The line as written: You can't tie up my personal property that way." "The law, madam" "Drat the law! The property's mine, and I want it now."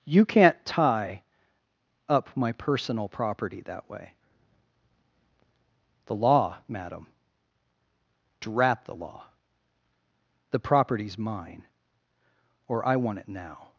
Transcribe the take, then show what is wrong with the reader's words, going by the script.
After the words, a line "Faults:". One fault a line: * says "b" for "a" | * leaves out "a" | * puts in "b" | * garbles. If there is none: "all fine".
You can't tie up my personal property that way." "The law, madam" "Drat the law! The property's mine, or I want it now."
Faults:
* says "or" for "and"